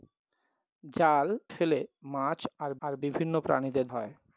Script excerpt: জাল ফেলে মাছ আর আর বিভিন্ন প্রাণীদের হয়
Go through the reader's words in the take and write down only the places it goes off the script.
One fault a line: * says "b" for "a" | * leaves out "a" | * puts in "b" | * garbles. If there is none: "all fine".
all fine